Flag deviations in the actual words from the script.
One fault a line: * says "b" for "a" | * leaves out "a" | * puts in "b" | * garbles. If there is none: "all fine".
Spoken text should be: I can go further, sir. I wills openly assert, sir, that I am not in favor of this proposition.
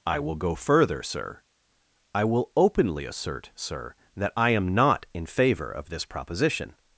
* says "will" for "can"
* says "will" for "wills"